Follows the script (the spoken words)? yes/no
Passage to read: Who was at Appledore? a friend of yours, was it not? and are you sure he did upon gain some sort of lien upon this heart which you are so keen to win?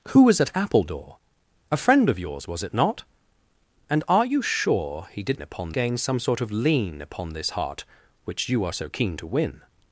yes